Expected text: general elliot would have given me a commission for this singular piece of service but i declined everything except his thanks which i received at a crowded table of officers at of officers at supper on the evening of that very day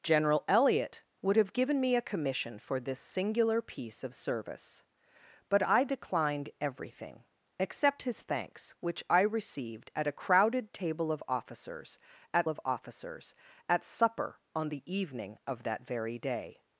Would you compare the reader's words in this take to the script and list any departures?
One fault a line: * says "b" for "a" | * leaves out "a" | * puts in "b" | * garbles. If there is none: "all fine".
all fine